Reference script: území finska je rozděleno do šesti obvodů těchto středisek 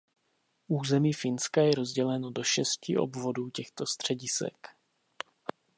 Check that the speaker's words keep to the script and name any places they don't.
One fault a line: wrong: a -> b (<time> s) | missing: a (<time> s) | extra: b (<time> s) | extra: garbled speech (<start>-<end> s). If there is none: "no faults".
no faults